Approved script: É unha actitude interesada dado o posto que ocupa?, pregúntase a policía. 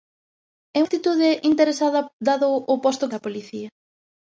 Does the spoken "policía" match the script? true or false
true